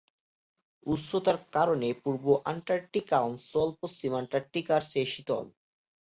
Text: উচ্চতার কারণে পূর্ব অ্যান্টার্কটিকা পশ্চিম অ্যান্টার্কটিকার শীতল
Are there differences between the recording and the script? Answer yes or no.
yes